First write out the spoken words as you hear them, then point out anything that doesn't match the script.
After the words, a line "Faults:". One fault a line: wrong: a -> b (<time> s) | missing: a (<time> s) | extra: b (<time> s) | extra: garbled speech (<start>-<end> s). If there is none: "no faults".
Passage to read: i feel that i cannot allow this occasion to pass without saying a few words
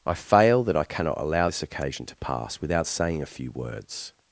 i fail that i cannot allow this occasion to pass without saying a few words
Faults:
wrong: feel -> fail (0.1 s)